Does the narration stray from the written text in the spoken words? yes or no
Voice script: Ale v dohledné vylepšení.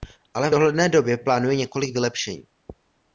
yes